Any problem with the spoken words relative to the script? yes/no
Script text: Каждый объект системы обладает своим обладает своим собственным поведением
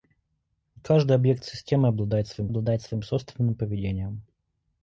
no